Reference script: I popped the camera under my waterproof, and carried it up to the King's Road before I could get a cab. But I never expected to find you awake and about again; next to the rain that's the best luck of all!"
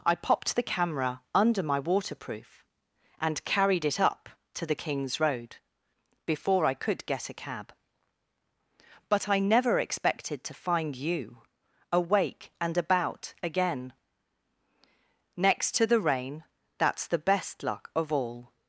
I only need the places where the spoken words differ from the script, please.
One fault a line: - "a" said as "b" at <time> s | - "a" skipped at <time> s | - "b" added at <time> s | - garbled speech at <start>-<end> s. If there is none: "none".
none